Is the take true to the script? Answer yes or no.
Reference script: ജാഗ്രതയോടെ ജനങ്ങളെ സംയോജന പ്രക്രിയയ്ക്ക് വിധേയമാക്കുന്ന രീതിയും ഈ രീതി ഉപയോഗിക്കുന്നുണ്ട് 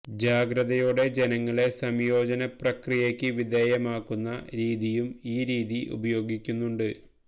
yes